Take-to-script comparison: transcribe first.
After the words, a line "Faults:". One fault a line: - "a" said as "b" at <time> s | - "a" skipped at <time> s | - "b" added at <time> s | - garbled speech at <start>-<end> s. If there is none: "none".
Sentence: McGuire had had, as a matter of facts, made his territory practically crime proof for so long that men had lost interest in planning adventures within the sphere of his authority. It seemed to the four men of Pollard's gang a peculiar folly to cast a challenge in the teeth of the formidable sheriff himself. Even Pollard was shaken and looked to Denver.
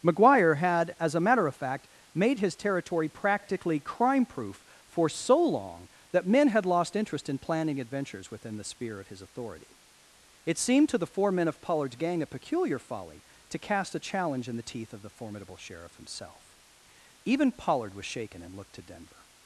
McGuire had, as a matter of fact, made his territory practically crime proof for so long that men had lost interest in planning adventures within the sphere of his authority. It seemed to the four men of Pollard's gang a peculiar folly to cast a challenge in the teeth of the formidable sheriff himself. Even Pollard was shaken and looked to Denver.
Faults:
- "had" skipped at 0.9 s
- "facts" said as "fact" at 1.6 s